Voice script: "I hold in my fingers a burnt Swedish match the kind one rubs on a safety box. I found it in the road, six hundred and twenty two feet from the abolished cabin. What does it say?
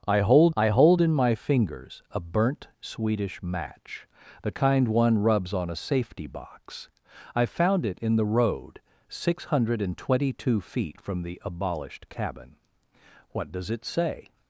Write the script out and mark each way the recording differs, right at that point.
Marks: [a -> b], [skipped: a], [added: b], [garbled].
"I hold [added: I hold] in my fingers a burnt Swedish match the kind one rubs on a safety box. I found it in the road, six hundred and twenty two feet from the abolished cabin. What does it say?